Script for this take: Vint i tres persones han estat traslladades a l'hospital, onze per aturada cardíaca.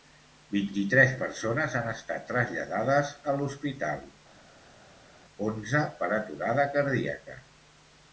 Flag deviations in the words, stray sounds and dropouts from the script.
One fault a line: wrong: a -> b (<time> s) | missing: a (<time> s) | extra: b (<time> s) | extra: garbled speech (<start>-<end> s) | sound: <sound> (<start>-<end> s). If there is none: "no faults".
no faults